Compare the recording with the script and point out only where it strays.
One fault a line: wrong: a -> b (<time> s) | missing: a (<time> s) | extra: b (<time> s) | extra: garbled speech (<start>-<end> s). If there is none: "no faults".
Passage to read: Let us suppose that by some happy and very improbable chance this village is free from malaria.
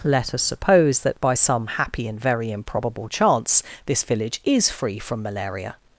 no faults